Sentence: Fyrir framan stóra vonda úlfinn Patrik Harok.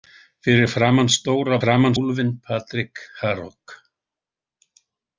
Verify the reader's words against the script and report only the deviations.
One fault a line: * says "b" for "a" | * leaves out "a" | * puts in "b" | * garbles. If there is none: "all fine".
* says "framan" for "vonda"